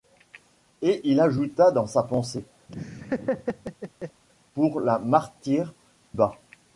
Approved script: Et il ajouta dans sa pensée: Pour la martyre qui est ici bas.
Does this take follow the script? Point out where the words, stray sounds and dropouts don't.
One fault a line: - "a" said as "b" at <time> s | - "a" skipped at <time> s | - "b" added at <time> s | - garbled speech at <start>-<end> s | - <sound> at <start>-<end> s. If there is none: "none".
- laugh at 2.7-4.2 s
- "qui est ici" skipped at 5.7 s